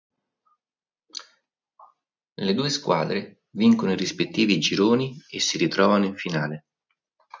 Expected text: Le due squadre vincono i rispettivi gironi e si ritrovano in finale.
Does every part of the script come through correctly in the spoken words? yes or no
yes